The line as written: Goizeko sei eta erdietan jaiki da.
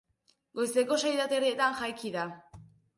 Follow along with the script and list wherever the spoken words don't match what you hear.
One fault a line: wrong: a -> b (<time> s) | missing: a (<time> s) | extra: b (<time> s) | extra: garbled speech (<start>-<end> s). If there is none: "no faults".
no faults